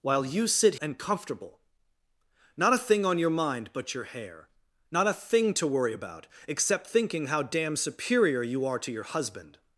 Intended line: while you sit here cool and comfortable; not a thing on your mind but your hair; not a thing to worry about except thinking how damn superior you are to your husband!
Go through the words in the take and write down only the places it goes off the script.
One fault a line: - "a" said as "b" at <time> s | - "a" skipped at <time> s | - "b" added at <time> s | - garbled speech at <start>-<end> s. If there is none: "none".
- "here cool" skipped at 0.8 s